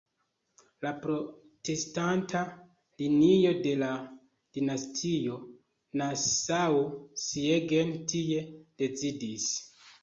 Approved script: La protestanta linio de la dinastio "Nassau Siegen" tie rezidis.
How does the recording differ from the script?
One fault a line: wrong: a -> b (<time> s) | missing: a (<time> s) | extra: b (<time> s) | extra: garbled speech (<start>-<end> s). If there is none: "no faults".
no faults